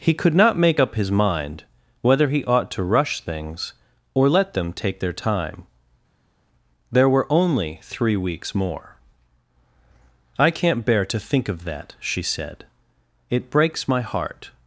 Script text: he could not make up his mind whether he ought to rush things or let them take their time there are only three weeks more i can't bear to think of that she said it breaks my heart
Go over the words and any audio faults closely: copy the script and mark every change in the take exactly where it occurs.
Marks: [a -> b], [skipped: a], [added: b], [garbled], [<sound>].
he could not make up his mind whether he ought to rush things or let them take their time there [are -> were] only three weeks more i can't bear to think of that she said it breaks my heart